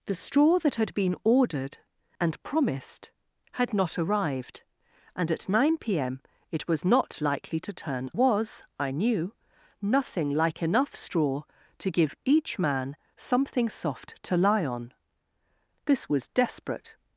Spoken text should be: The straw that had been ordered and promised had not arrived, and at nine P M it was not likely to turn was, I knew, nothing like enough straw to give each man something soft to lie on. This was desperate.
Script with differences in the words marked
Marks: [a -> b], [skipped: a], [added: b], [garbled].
The straw that had been ordered and promised had not arrived, and at nine P M it was not likely to turn was, I knew, nothing like enough straw to give each man something soft to lie on. This was desperate.